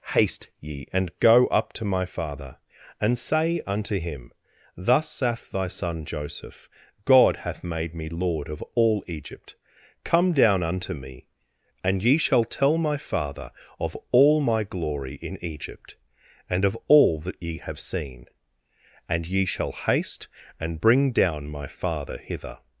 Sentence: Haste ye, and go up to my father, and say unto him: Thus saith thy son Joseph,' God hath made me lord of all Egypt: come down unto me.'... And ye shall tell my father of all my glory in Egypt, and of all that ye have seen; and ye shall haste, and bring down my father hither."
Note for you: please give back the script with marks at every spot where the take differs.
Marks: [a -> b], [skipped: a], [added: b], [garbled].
Haste ye, and go up to my father, and say unto him: Thus saith thy son Joseph,' God hath made me lord of all Egypt: come down unto me.'... And ye shall tell my father of all my glory in Egypt, and of all that ye have seen; and ye shall haste, and bring down my father hither."